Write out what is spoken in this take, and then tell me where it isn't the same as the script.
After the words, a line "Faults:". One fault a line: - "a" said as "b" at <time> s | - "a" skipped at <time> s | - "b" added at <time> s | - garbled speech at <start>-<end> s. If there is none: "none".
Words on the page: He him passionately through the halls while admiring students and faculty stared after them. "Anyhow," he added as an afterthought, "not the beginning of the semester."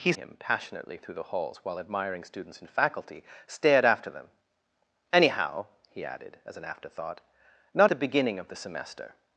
He him passionately through the halls while admiring students and faculty stared after them. "Anyhow," he added as an afterthought, "not the beginning of the semester."
Faults:
none